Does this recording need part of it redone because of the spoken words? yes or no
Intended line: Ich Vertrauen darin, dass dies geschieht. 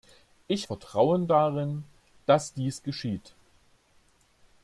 no